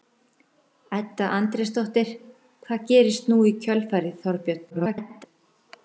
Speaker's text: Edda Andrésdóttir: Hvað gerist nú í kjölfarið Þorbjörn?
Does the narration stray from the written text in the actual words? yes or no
yes